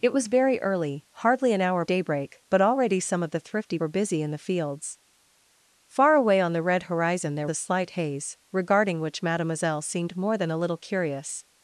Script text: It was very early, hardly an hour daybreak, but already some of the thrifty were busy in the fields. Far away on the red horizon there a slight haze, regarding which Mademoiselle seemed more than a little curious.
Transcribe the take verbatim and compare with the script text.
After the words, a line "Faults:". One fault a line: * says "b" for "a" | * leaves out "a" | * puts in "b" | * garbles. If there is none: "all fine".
It was very early, hardly an hour daybreak, but already some of the thrifty were busy in the fields. Far away on the red horizon there a slight haze, regarding which Mademoiselle seemed more than a little curious.
Faults:
all fine